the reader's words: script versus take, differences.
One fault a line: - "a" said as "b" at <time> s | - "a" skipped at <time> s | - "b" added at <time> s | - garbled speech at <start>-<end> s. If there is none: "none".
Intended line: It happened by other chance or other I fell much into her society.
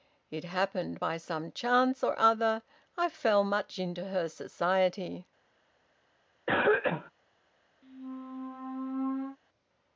- "other" said as "some" at 1.2 s